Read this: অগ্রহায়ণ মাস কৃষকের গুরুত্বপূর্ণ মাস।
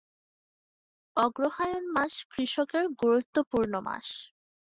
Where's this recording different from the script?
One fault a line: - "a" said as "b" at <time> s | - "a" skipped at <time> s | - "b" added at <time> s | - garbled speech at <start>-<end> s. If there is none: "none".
none